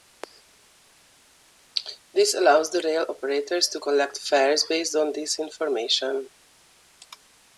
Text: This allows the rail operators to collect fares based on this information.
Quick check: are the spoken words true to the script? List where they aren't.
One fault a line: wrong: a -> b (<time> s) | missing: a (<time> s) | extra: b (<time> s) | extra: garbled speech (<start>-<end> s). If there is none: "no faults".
no faults